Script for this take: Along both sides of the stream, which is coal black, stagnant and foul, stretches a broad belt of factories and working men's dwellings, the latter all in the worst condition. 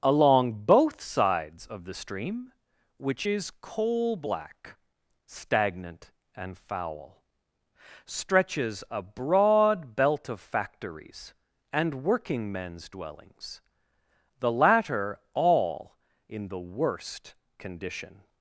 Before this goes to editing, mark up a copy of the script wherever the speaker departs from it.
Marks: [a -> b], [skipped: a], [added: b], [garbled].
Along both sides of the stream, which is coal black, stagnant and foul, stretches a broad belt of factories and working men's dwellings, the latter all in the worst condition.